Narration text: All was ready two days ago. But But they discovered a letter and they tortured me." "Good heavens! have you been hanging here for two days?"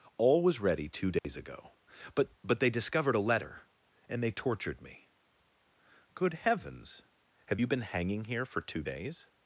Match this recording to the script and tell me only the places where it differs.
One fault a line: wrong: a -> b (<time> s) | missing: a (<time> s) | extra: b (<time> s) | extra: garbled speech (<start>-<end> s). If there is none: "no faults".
no faults